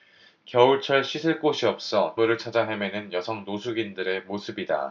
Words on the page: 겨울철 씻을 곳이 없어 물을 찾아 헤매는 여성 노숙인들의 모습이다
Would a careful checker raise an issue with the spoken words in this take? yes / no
no